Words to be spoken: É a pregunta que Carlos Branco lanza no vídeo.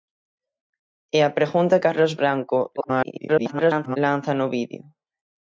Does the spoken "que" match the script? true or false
false